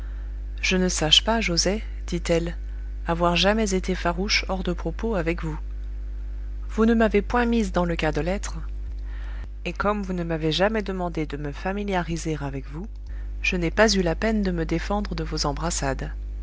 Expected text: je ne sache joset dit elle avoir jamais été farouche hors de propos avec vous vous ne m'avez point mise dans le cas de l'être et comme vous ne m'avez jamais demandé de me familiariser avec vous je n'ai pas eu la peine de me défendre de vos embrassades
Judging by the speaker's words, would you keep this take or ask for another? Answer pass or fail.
fail